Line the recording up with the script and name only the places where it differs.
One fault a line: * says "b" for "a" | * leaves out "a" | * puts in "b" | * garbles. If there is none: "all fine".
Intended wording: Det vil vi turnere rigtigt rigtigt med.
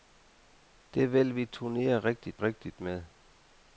all fine